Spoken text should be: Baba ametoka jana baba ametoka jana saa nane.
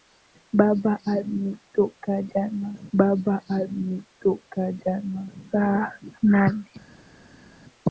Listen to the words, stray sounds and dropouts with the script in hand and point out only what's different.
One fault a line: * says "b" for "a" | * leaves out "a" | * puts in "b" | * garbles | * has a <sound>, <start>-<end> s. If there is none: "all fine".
all fine